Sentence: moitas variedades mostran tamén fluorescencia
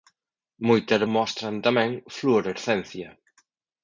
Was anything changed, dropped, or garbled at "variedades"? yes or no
yes